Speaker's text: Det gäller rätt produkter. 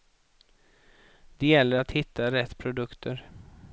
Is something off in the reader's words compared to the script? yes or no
yes